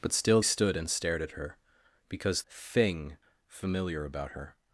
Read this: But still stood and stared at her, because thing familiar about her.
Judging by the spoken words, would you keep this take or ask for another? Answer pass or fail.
pass